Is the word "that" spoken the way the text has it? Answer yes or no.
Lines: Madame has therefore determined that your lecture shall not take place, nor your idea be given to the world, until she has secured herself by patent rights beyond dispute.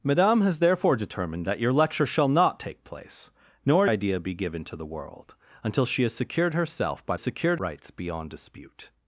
yes